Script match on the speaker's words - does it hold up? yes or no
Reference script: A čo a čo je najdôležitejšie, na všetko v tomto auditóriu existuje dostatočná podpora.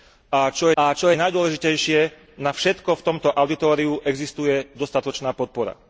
yes